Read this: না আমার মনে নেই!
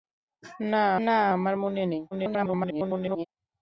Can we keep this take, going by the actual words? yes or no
no